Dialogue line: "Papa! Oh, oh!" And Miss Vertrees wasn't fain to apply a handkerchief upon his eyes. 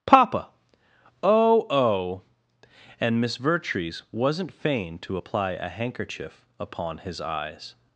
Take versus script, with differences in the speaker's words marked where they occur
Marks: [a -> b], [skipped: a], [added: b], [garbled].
"Papa! Oh, oh!" And Miss Vertrees wasn't fain to apply a handkerchief upon his eyes.